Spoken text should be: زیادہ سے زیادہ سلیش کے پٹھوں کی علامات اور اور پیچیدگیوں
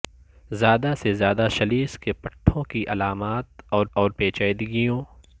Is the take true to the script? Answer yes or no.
yes